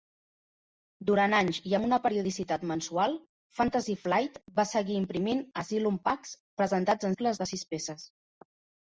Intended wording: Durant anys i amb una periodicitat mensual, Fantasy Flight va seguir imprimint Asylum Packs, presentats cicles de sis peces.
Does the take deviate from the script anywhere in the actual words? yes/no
no